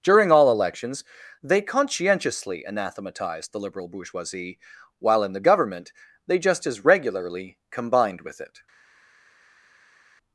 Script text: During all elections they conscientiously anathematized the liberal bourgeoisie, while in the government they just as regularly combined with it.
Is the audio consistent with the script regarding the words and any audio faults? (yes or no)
yes